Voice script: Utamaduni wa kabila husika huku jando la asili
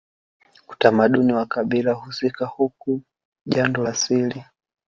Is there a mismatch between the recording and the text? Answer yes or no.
yes